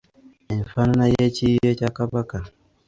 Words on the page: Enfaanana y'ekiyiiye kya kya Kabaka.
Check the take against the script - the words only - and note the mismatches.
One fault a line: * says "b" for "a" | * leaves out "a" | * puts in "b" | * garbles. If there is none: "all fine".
* leaves out "kya"